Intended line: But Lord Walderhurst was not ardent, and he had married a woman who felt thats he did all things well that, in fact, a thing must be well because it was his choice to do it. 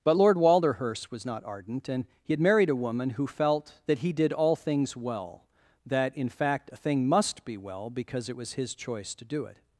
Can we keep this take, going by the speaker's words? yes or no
no